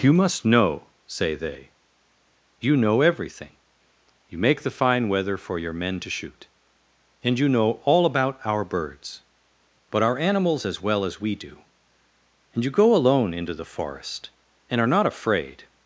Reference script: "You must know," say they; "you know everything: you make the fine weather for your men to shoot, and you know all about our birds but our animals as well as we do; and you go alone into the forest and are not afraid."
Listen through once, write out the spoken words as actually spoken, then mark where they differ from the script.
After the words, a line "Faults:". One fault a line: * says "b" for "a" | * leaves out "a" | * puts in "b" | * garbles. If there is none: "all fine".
"You must know," say they; "you know everything: you make the fine weather for your men to shoot, and you know all about our birds but our animals as well as we do; and you go alone into the forest and are not afraid."
Faults:
all fine